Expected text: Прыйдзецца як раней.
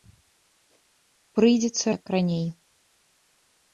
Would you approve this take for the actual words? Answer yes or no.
yes